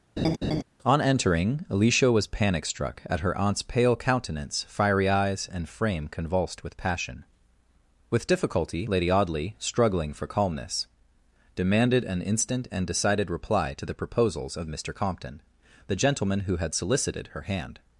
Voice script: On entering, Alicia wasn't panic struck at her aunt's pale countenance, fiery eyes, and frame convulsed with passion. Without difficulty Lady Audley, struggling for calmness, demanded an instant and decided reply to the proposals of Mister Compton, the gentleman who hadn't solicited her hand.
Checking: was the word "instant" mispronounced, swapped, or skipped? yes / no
no